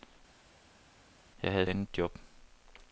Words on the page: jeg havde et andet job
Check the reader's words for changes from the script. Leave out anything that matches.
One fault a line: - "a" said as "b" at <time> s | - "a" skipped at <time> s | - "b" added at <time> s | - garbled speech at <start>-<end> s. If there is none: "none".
none